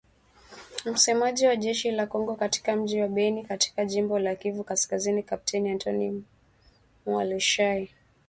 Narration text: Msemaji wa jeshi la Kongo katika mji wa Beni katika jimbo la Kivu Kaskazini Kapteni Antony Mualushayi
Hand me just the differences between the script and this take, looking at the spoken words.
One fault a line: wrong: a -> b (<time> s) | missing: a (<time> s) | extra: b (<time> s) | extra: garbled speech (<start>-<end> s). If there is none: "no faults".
no faults